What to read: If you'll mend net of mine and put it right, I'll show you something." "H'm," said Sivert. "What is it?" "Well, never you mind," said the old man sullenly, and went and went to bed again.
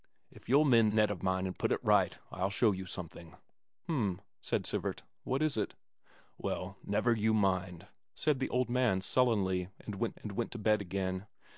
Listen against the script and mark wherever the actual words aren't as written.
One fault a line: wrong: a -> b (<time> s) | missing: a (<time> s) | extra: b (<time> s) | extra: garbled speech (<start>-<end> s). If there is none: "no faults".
no faults